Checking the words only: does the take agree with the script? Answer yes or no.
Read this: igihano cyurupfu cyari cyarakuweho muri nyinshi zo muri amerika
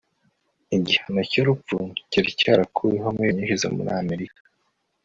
yes